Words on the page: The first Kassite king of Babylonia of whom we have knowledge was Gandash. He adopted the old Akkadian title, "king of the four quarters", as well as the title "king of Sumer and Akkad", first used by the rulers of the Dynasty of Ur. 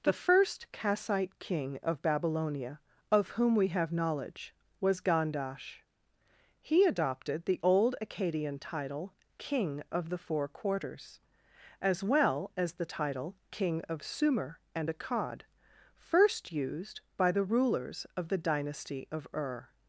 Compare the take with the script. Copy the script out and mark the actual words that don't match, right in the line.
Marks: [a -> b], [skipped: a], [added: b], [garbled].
The first Kassite king of Babylonia of whom we have knowledge was Gandash. He adopted the old Akkadian title, "king of the four quarters", as well as the title "king of Sumer and Akkad", first used by the rulers of the Dynasty of Ur.